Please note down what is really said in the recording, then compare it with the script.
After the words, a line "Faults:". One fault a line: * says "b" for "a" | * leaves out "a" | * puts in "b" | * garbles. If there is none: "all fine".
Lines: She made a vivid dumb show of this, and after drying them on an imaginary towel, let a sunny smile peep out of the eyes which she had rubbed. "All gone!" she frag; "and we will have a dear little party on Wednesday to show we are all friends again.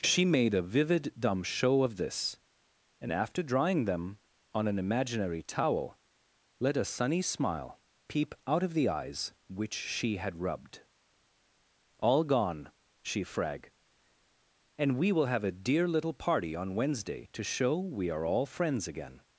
She made a vivid dumb show of this, and after drying them on an imaginary towel, let a sunny smile peep out of the eyes which she had rubbed. "All gone!" she frag; "and we will have a dear little party on Wednesday to show we are all friends again.
Faults:
all fine